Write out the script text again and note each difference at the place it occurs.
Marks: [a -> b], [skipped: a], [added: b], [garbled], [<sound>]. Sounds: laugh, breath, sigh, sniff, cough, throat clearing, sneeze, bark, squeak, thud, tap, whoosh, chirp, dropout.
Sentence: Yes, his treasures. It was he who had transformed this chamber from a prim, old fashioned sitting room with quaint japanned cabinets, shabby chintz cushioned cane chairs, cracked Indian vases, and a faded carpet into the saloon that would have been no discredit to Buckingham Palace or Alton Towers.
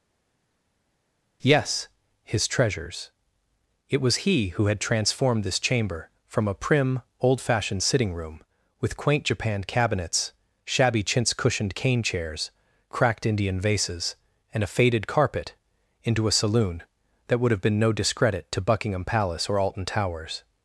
Yes, his treasures. It was he who had transformed this chamber from a prim, old fashioned sitting room with quaint japanned cabinets, shabby chintz cushioned cane chairs, cracked Indian vases, and a faded carpet into [the -> a] saloon that would have been no discredit to Buckingham Palace or Alton Towers.